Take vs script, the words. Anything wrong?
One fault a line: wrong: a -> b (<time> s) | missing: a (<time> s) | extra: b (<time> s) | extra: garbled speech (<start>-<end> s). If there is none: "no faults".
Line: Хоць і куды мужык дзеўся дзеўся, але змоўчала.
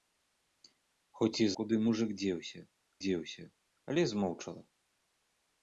no faults